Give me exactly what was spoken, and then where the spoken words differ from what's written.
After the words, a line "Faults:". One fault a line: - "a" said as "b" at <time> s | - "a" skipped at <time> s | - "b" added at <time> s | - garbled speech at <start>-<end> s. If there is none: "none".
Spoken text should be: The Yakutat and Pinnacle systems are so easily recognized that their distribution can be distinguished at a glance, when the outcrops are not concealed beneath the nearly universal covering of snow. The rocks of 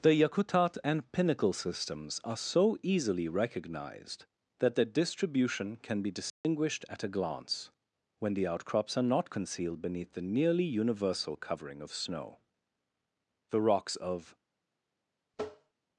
The Yakutat and Pinnacle systems are so easily recognized that their distribution can be distinguished at a glance, when the outcrops are not concealed beneath the nearly universal covering of snow. The rocks of
Faults:
none